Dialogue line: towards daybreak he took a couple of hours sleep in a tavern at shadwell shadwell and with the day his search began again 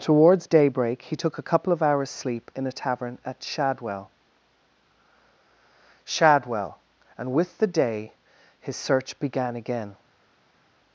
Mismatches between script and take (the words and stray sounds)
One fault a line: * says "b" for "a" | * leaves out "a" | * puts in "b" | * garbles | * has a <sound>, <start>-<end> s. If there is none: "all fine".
all fine